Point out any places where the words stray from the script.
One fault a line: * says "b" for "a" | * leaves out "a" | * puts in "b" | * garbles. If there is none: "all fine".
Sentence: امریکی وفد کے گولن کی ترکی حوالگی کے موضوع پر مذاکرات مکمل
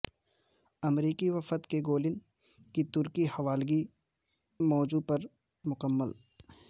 * leaves out "کے"
* leaves out "مذاکرات"